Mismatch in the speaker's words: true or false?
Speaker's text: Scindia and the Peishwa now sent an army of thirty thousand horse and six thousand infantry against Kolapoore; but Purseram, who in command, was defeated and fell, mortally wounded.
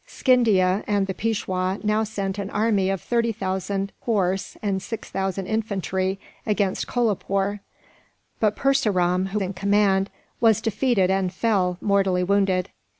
false